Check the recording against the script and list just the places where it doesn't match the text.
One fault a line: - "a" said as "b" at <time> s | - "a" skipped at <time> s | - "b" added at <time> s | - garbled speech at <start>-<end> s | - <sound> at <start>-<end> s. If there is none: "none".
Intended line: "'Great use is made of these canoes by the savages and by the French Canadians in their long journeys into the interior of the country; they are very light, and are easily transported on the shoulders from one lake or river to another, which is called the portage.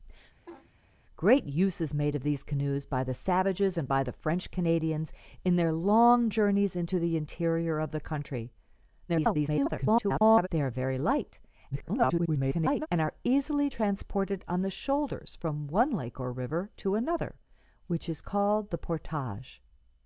- laugh at 0.5-0.7 s
- garbled speech at 9.1-10.5 s
- garbled speech at 11.7-12.9 s